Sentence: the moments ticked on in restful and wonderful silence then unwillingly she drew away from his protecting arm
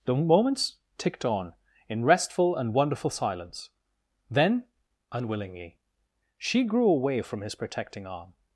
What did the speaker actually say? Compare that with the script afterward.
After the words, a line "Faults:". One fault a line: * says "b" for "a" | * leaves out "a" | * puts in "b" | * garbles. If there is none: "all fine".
the moments ticked on in restful and wonderful silence then unwillingly she grew away from his protecting arm
Faults:
* says "grew" for "drew"